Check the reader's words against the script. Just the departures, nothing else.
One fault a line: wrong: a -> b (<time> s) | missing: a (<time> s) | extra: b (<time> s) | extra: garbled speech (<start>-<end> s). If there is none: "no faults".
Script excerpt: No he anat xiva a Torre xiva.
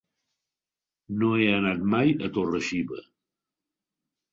wrong: xiva -> mai (1.9 s)